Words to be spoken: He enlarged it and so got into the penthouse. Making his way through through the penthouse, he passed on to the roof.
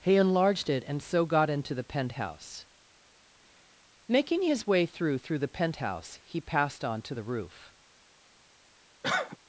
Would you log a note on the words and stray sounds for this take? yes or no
yes